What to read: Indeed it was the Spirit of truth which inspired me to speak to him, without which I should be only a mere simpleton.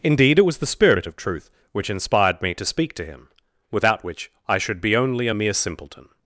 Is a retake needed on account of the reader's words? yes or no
no